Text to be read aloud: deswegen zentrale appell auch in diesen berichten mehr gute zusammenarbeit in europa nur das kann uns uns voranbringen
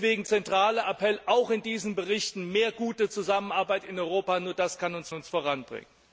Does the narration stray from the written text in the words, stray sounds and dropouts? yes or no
no